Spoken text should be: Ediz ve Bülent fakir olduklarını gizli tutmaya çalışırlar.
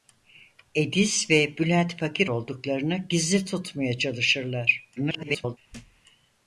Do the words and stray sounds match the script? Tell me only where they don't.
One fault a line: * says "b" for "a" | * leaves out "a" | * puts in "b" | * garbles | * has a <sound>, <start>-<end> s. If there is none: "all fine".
* garbles
* has a thud, 5.7-6.0 s